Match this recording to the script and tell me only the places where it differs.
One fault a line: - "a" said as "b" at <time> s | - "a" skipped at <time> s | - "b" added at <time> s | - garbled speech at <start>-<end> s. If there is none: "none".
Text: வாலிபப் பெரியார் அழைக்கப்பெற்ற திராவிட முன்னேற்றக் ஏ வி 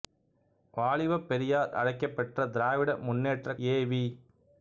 none